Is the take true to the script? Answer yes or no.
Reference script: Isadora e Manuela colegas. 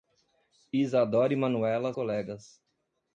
yes